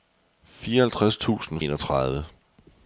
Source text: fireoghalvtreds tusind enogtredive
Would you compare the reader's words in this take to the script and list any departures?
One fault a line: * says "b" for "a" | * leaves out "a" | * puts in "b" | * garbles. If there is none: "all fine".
all fine